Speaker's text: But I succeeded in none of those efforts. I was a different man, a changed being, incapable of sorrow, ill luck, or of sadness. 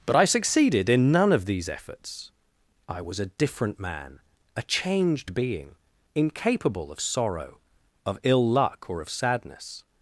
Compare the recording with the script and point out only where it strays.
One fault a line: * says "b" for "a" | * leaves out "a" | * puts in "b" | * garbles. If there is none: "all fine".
* says "these" for "those"
* puts in "of"